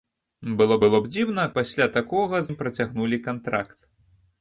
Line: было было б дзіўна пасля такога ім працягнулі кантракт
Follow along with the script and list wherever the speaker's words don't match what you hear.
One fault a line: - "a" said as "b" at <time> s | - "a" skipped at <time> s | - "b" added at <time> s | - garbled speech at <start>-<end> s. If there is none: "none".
none